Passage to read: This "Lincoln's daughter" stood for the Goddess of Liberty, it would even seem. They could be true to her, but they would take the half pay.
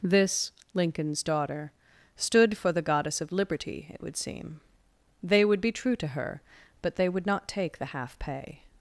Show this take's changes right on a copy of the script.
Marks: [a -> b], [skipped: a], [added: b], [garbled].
This "Lincoln's daughter" stood for the Goddess of Liberty, it would [skipped: even] seem. They [could -> would] be true to her, but they would [added: not] take the half pay.